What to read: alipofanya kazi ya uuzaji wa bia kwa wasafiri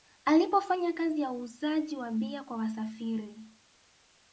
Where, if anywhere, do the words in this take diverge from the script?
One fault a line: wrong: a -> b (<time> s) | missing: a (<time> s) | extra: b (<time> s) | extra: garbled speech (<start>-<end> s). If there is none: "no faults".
no faults